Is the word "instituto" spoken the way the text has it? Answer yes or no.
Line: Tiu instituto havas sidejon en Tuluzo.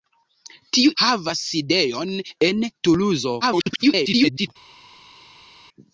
no